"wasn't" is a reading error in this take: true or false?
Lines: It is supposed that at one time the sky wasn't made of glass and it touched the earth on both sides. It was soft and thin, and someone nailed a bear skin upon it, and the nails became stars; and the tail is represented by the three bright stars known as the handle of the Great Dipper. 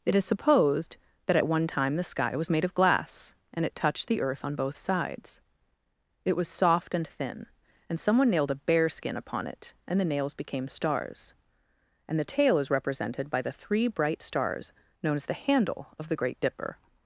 true